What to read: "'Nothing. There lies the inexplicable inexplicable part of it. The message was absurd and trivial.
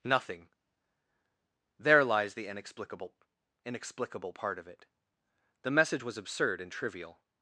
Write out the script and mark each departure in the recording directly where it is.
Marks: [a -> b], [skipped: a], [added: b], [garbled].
"'Nothing. There lies the inexplicable inexplicable part of it. The message was absurd and trivial.